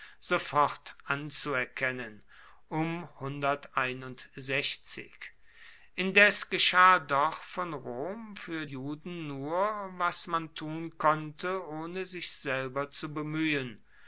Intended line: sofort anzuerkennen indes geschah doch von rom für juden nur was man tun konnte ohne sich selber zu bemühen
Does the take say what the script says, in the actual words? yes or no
yes